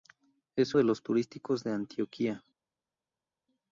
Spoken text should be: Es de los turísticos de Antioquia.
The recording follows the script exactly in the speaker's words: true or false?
true